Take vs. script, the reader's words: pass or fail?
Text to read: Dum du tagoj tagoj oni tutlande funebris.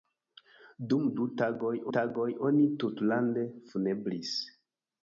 pass